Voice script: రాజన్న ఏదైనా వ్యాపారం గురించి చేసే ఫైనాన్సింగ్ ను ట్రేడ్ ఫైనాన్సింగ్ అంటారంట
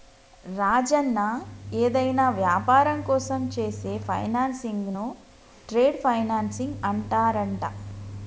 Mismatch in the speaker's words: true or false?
true